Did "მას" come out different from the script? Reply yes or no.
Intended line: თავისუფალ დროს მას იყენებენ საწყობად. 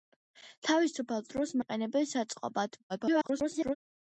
yes